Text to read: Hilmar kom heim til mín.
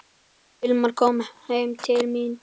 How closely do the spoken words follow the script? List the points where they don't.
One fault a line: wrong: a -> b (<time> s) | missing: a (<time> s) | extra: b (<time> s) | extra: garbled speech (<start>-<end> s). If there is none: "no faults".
no faults